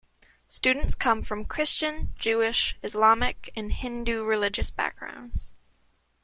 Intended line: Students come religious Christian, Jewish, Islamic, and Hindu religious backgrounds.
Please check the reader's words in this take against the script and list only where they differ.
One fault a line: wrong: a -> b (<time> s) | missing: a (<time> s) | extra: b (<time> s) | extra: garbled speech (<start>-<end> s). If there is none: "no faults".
wrong: religious -> from (1.2 s)